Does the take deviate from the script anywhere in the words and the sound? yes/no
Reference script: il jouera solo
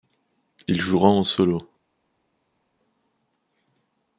yes